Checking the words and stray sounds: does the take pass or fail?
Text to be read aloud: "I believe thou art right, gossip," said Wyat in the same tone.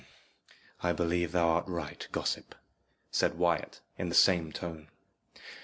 pass